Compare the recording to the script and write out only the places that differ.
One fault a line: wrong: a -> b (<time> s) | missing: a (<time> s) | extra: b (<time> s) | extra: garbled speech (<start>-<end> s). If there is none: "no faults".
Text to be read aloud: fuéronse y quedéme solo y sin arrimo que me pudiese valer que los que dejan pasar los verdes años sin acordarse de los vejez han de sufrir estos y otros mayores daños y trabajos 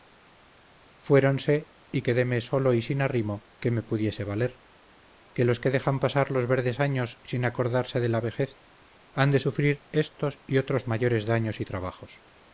wrong: los -> la (8.1 s)